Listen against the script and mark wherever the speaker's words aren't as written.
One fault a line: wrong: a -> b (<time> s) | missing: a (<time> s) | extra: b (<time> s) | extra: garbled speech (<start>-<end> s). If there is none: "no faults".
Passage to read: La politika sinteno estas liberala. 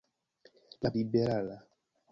missing: politika sinteno estas (0.9 s)